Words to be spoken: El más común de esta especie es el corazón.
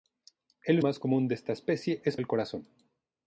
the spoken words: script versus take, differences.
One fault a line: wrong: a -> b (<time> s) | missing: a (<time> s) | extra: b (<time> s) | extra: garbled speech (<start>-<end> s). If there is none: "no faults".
no faults